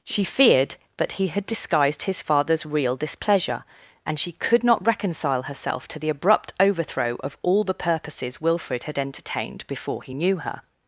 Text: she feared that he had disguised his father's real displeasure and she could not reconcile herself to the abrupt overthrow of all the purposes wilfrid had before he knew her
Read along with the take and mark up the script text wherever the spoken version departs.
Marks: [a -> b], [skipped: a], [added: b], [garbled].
she feared that he had disguised his father's real displeasure and she could not reconcile herself to the abrupt overthrow of all the purposes wilfrid had [added: entertained] before he knew her